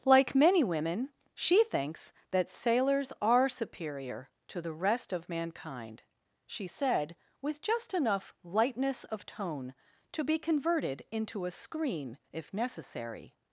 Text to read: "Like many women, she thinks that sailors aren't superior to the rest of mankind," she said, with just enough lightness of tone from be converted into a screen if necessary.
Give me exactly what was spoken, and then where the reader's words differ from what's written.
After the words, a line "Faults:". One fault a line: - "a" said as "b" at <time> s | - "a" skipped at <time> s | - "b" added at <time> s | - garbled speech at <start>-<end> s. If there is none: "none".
"Like many women, she thinks that sailors are superior to the rest of mankind," she said, with just enough lightness of tone to be converted into a screen if necessary.
Faults:
- "aren't" said as "are" at 3.2 s
- "from" said as "to" at 10.1 s